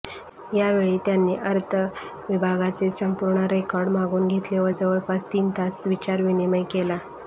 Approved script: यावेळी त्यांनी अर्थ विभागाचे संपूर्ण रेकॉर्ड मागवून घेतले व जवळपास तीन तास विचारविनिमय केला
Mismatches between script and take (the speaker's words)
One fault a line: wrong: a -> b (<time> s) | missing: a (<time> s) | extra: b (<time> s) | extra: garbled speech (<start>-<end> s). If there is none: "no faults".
no faults